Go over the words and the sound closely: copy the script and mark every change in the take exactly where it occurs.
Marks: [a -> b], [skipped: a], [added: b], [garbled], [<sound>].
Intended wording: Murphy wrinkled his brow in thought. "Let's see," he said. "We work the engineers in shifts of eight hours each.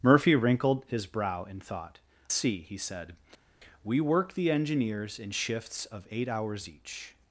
Murphy wrinkled his brow in thought. [skipped: "Let's] see," he said. "We work the engineers in shifts of eight hours each.